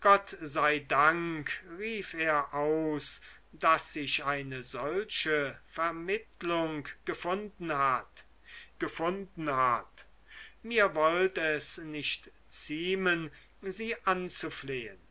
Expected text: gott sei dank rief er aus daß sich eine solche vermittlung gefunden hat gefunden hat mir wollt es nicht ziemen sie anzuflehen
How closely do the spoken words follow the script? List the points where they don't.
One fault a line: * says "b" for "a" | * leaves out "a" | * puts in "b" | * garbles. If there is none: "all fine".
all fine